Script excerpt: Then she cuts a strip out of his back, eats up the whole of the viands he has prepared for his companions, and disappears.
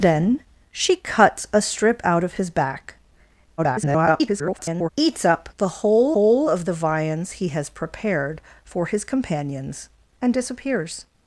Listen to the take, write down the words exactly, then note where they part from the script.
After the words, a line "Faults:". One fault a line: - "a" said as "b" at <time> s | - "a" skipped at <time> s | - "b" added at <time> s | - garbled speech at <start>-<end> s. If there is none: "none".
Then she cuts a strip out of his back, [garbled] eats up the whole whole of the viands he has prepared for his companions, and disappears.
Faults:
- garbled speech at 3.6-4.9 s
- "whole" added at 6.1 s